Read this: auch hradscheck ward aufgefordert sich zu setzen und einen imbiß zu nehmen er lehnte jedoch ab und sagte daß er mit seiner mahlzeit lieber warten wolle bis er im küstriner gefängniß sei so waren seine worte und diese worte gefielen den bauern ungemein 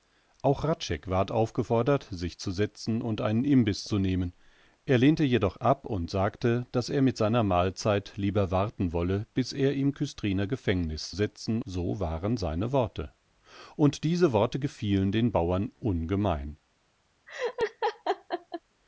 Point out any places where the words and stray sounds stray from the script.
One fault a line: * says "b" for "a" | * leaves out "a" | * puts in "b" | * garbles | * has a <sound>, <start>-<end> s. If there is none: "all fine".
* says "setzen" for "sei"
* has a laugh, 17.3-18.6 s